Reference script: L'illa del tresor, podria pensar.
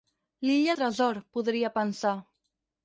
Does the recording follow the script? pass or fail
fail